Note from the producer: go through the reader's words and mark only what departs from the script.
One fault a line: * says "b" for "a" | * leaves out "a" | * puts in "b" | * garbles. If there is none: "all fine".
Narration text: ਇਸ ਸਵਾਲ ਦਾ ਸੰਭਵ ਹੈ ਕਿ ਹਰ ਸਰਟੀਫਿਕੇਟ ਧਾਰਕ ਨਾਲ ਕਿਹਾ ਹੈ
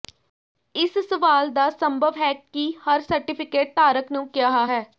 * says "ਨੂੰ" for "ਨਾਲ"